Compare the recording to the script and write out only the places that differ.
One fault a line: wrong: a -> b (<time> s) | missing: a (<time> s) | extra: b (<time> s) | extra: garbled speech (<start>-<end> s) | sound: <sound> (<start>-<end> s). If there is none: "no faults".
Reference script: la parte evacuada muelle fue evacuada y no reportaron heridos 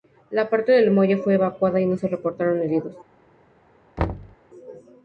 wrong: evacuada -> del (0.7 s)
extra: se (1.9 s)
sound: thud (4.0-4.4 s)